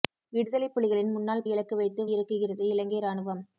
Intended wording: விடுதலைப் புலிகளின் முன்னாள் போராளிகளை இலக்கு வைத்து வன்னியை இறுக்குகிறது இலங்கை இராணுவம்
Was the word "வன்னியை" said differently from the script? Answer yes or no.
yes